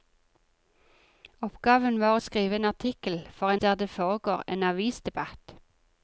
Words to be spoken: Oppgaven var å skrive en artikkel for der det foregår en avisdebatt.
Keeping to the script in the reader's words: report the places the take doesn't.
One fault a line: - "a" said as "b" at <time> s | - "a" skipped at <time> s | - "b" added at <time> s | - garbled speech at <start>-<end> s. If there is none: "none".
none